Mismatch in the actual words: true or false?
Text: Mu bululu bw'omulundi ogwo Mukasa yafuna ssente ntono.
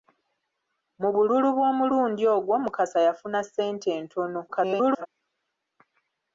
true